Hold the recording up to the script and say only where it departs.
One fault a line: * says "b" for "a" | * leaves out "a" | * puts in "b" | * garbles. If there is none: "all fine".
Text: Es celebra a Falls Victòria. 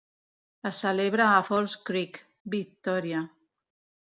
* puts in "Creek"